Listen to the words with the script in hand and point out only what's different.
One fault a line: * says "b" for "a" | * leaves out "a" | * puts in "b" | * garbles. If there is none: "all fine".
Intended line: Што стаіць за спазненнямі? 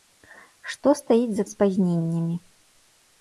all fine